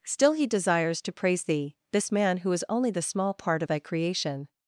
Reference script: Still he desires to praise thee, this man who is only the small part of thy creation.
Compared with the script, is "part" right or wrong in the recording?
right